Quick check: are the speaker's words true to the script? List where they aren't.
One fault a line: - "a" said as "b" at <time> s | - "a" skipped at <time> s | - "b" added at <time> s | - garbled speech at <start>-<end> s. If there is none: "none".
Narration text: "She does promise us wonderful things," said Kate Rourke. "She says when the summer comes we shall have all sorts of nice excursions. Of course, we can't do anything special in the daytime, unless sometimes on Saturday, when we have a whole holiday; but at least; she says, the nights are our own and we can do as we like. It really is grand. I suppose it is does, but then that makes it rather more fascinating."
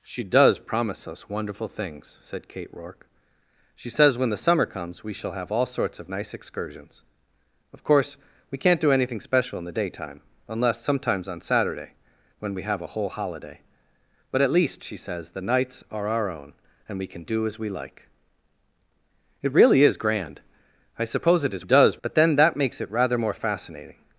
none